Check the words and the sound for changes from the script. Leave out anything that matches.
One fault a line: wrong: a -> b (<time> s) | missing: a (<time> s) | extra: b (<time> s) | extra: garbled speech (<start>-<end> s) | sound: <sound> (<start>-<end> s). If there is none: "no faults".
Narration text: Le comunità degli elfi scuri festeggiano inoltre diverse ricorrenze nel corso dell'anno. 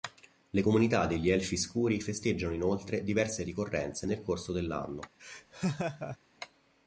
sound: laugh (5.2-6.2 s)